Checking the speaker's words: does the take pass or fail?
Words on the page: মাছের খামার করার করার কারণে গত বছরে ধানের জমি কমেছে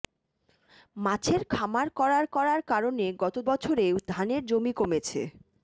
pass